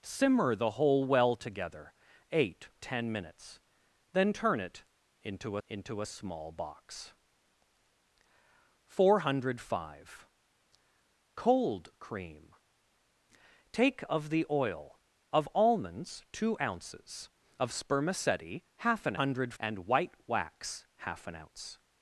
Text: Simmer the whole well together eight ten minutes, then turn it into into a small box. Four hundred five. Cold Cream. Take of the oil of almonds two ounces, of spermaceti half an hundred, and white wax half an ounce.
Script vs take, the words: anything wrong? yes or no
no